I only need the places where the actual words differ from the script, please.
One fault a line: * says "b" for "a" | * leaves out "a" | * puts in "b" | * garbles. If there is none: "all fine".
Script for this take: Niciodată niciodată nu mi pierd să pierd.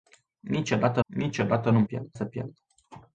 all fine